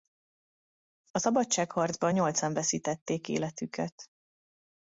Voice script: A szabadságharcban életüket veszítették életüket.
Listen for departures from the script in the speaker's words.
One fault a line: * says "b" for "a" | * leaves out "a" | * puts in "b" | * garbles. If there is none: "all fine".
* says "nyolcan" for "életüket"